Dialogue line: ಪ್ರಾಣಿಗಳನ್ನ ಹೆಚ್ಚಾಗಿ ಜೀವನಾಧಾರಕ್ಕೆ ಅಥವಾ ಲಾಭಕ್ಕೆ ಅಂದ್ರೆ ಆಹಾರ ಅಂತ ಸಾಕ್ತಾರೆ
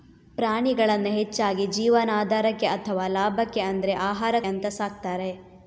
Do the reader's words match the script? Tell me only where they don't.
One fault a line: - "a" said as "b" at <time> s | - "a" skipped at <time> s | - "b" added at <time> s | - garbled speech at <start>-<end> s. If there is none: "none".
none